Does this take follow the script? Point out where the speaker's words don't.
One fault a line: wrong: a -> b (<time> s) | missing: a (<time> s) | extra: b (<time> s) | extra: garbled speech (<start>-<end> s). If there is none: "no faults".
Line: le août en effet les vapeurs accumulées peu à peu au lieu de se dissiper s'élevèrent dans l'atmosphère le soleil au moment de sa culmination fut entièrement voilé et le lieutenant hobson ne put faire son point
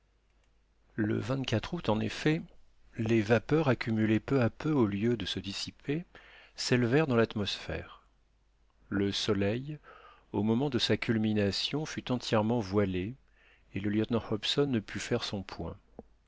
no faults